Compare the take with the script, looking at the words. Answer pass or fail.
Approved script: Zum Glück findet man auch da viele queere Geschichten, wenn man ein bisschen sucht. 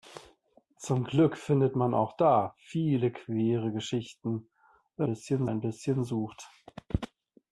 fail